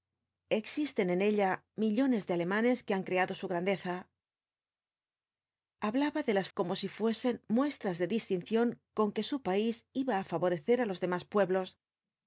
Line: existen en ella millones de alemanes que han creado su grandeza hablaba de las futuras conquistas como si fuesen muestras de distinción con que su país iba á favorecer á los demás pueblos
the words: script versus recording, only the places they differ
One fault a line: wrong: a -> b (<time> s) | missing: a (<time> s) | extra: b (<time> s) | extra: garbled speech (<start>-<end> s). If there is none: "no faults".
missing: futuras conquistas (6.5 s)